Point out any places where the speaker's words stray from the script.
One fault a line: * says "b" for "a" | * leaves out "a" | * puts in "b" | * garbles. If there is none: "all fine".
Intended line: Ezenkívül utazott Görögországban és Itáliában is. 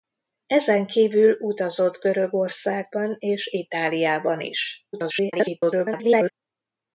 * garbles